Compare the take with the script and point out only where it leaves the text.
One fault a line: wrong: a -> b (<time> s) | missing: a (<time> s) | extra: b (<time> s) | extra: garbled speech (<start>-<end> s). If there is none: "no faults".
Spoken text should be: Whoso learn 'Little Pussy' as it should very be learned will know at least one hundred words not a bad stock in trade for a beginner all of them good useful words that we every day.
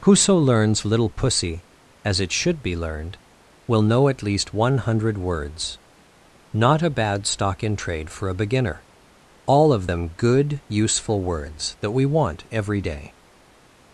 wrong: learn -> learns (0.3 s)
missing: very (2.6 s)
extra: want (12.0 s)